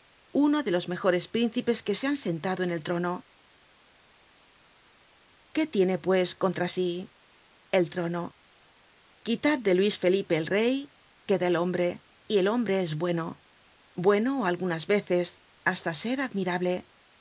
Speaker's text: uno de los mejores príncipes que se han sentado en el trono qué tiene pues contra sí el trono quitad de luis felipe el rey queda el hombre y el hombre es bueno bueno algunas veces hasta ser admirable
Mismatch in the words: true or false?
false